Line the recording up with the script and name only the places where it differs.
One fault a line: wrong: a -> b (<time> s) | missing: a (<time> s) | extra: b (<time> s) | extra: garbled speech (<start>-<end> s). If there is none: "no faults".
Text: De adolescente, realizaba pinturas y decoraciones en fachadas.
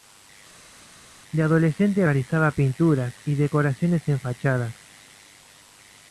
no faults